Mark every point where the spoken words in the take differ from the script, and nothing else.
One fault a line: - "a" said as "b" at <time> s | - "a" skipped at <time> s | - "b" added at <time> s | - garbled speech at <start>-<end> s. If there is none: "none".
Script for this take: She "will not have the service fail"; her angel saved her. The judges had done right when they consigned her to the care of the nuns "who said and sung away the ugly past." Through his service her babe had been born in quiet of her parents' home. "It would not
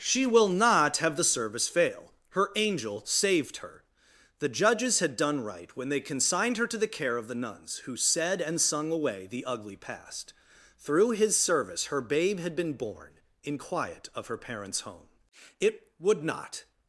none